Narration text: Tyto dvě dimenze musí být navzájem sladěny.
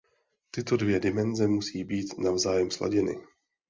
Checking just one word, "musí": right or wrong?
right